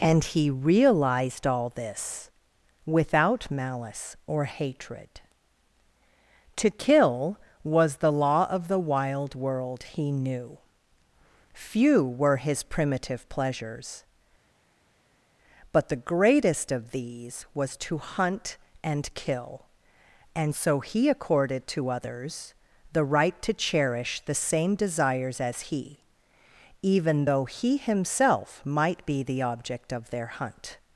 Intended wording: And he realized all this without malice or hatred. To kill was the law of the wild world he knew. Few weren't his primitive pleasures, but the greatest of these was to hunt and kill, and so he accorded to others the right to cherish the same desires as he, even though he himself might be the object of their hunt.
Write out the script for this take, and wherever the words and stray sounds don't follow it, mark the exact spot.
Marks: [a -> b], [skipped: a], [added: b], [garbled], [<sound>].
And he realized all this without malice or hatred. To kill was the law of the wild world he knew. Few [weren't -> were] his primitive pleasures, but the greatest of these was to hunt and kill, and so he accorded to others the right to cherish the same desires as he, even though he himself might be the object of their hunt.